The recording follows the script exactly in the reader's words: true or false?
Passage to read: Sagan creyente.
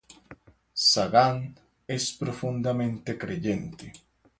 false